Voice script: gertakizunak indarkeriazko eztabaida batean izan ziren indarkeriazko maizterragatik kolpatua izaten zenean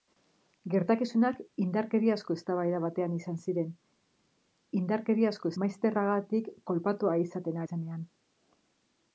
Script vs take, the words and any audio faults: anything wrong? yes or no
no